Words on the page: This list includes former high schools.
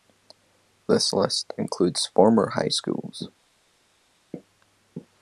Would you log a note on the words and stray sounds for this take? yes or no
no